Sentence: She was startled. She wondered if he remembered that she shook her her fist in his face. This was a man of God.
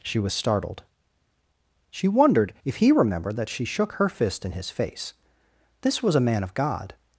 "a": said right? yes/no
yes